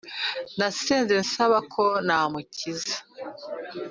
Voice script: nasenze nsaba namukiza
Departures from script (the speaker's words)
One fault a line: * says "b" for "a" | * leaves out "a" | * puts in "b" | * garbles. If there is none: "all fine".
* puts in "ko"